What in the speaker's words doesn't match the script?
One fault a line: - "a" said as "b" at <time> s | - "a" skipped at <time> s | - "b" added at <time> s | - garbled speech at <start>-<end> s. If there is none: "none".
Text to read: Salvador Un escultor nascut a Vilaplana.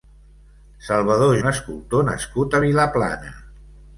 none